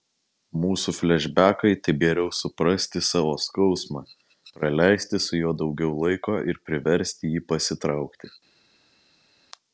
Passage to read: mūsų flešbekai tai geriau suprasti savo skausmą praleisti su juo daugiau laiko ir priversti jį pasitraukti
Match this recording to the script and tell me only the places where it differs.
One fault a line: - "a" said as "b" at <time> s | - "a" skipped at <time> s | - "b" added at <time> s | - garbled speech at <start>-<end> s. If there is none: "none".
none